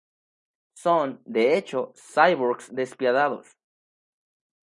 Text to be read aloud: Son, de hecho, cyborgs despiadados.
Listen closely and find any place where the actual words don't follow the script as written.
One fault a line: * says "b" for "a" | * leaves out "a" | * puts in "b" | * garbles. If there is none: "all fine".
all fine